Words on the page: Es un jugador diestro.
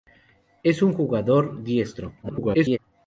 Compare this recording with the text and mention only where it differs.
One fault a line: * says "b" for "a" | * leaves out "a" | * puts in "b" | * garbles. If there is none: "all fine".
* garbles